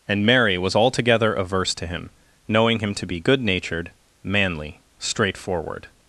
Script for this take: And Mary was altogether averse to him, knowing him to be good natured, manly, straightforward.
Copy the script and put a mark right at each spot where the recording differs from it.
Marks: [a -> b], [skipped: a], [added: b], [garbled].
And Mary was altogether averse to him, knowing him to be good natured, manly, straightforward.